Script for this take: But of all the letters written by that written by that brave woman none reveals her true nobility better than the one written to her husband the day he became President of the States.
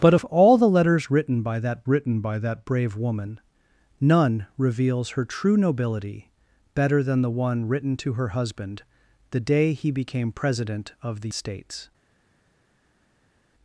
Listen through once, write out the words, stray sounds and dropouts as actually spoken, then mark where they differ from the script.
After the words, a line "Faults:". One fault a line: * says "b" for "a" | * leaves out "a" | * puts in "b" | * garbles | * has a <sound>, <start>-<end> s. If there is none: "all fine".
But of all the letters written by that written by that brave woman none reveals her true nobility better than the one written to her husband the day he became President of the States.
Faults:
all fine